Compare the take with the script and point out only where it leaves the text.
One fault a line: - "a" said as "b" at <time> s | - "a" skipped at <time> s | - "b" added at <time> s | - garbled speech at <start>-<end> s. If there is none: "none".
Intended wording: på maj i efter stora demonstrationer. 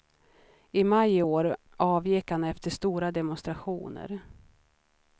- "på" said as "I" at 0.7 s
- "år avgick han" added at 1.2 s